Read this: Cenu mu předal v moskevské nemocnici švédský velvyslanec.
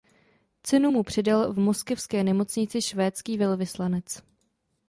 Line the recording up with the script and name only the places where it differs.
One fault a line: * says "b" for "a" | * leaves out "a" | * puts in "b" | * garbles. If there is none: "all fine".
all fine